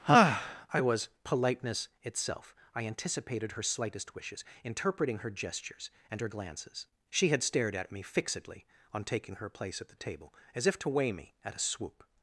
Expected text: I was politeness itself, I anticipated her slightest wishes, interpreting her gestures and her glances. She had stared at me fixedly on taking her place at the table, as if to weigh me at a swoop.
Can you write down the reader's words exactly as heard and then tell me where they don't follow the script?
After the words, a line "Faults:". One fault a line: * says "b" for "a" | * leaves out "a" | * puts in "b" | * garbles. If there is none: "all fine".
I was politeness itself, I anticipated her slightest wishes, interpreting her gestures and her glances. She had stared at me fixedly on taking her place at the table, as if to weigh me at a swoop.
Faults:
all fine